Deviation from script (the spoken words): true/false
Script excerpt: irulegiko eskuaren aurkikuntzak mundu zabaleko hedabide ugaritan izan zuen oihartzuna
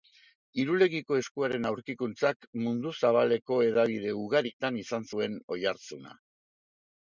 false